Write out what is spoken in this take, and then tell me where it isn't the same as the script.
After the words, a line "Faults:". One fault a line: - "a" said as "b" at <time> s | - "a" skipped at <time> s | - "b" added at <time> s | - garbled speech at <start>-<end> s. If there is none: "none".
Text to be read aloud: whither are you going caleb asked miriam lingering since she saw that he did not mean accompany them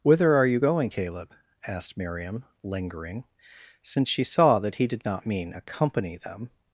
whither are you going caleb asked miriam lingering since she saw that he did not mean accompany them
Faults:
none